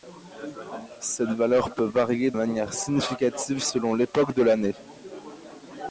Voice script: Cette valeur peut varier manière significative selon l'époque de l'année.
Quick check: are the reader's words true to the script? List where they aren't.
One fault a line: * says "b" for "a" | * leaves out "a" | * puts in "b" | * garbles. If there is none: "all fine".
all fine